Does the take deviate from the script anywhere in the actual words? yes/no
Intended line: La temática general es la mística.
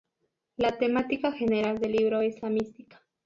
yes